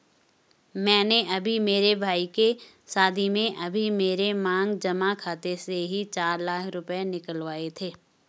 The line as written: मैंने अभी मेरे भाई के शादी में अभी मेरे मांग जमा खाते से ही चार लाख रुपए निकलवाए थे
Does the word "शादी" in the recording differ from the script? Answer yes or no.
no